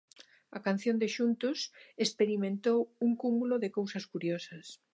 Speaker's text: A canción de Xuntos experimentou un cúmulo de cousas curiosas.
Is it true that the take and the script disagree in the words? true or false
false